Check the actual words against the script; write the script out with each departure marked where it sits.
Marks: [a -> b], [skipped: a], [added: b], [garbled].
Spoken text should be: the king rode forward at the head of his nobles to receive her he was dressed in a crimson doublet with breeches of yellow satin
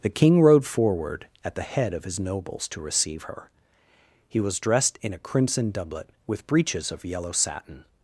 the king rode forward at the head of his nobles to receive her he was dressed in a crimson doublet with breeches of yellow satin